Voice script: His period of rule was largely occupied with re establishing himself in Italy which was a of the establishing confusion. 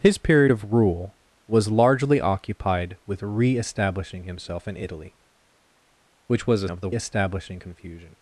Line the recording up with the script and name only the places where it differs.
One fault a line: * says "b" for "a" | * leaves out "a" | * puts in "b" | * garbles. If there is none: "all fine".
all fine